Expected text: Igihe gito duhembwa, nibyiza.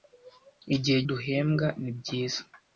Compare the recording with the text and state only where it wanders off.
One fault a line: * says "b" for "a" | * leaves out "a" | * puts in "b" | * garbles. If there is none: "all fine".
* leaves out "gito"